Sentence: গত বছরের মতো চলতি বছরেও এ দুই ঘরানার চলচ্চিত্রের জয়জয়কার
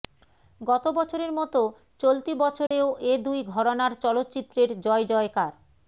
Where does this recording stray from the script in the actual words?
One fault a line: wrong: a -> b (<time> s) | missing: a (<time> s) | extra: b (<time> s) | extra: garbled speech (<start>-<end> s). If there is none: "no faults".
no faults